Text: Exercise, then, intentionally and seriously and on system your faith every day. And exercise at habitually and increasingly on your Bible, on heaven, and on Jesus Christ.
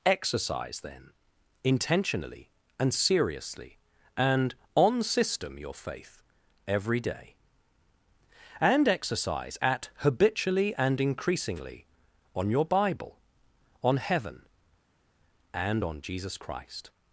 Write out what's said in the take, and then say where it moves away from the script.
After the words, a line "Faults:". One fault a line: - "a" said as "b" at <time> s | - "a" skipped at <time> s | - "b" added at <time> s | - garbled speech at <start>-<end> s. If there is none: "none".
Exercise, then, intentionally and seriously and on system your faith every day. And exercise at habitually and increasingly on your Bible, on heaven, and on Jesus Christ.
Faults:
none